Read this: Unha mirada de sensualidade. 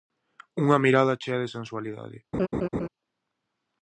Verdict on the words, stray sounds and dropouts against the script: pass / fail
fail